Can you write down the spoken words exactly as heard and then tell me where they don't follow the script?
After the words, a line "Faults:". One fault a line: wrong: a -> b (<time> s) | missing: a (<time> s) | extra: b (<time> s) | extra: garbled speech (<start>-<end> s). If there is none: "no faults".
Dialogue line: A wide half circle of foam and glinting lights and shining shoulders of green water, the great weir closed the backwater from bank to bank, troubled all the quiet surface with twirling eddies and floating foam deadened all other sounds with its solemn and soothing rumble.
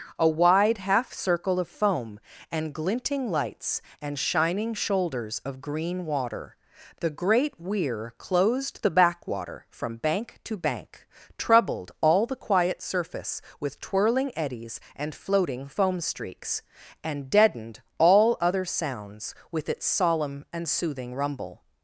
A wide half circle of foam and glinting lights and shining shoulders of green water, the great weir closed the backwater from bank to bank, troubled all the quiet surface with twirling eddies and floating foam streaks, and deadened all other sounds with its solemn and soothing rumble.
Faults:
extra: streaks and (16.0 s)